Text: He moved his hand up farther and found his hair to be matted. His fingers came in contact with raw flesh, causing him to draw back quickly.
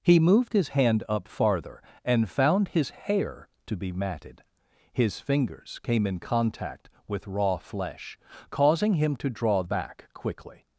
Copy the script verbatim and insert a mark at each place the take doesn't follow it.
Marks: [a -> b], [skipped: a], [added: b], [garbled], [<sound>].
He moved his hand up farther and found his hair to be matted. His fingers came in contact with raw flesh, causing him to draw back quickly.